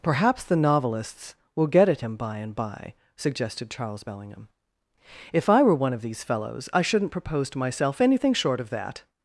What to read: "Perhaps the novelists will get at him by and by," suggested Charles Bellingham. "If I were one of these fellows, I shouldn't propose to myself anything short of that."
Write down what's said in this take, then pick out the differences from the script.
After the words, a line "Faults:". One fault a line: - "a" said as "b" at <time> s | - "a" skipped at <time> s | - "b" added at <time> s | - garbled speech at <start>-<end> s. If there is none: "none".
"Perhaps the novelists will get at him by and by," suggested Charles Bellingham. "If I were one of these fellows, I shouldn't propose to myself anything short of that."
Faults:
none